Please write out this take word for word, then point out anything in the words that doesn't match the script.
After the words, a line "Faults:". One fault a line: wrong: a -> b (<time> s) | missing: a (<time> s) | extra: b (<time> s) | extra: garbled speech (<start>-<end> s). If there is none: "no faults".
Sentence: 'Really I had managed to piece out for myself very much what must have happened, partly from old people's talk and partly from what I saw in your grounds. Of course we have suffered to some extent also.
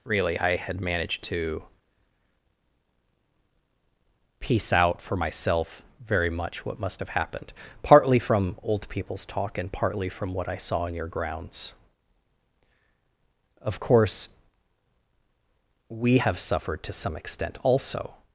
'Really I had managed to piece out for myself very much what must have happened, partly from old people's talk and partly from what I saw in your grounds. Of course we have suffered to some extent also.
Faults:
no faults